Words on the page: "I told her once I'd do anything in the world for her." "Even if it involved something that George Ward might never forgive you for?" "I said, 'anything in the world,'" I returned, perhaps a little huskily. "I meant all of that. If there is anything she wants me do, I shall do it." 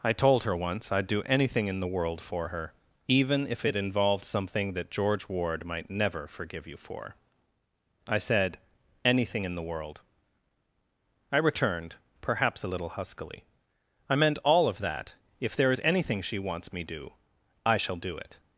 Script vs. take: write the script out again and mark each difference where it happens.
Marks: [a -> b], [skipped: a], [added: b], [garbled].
"I told her once I'd do anything in the world for her." "Even if it involved something that George Ward might never forgive you for?" "I said, 'anything in the world,'" I returned, perhaps a little huskily. "I meant all of that. If there is anything she wants me do, I shall do it."